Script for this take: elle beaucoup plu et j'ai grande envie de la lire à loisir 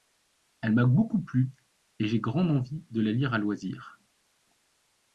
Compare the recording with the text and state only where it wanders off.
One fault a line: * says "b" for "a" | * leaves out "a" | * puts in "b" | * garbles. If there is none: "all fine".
* puts in "m'a"